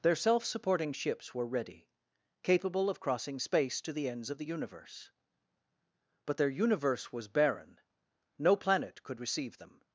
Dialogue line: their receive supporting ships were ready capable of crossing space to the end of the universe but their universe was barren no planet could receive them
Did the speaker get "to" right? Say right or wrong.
right